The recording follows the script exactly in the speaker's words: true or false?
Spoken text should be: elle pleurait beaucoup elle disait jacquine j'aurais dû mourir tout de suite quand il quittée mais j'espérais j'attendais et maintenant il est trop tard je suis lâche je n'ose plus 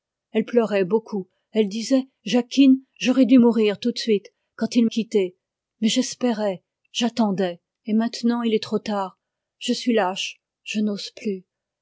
true